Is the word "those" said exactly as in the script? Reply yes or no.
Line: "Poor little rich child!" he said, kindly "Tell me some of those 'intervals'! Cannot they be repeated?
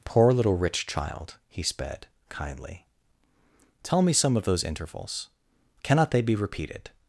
yes